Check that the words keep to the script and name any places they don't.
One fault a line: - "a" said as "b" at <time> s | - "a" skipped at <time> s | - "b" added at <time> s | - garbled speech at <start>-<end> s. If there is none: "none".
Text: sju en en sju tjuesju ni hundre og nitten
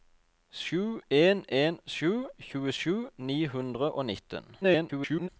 - garbled speech at 4.6-5.3 s